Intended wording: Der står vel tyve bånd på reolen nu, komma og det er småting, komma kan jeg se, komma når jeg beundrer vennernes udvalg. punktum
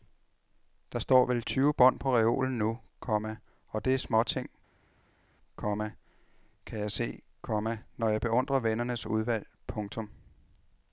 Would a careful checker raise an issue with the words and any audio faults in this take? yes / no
no